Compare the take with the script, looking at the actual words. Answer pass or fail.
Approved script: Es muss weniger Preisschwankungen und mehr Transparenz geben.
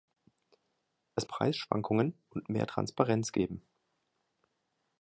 fail